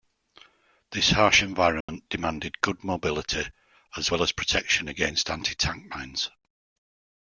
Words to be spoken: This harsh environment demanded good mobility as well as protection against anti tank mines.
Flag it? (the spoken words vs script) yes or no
no